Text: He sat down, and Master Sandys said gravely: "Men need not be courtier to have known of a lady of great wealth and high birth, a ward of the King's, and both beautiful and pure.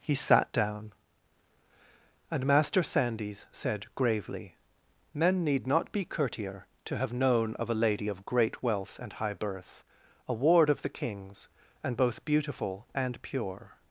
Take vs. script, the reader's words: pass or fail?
pass